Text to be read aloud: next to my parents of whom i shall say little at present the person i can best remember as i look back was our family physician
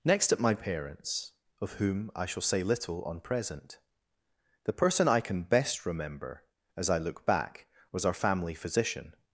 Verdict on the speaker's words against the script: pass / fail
fail